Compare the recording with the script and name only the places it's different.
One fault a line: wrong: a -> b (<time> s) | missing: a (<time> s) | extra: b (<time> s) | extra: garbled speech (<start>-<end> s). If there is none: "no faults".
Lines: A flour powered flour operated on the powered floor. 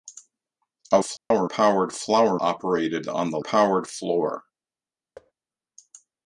no faults